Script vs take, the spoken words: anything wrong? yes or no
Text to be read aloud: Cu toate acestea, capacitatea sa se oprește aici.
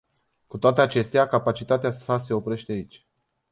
no